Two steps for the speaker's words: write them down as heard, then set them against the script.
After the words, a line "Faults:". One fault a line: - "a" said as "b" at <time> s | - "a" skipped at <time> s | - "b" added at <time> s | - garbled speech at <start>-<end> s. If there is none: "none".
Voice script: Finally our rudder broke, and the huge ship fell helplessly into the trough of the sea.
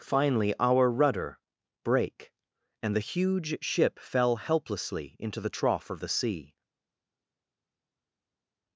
Finally our rudder brake, and the huge ship fell helplessly into the trough of the sea.
Faults:
- "broke" said as "brake" at 1.8 s